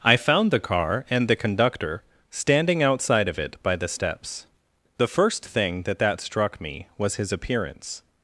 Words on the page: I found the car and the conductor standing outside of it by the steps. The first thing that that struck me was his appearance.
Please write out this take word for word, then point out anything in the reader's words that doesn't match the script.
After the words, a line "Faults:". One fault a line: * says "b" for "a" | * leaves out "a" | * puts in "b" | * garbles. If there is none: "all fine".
I found the car and the conductor standing outside of it by the steps. The first thing that that struck me was his appearance.
Faults:
all fine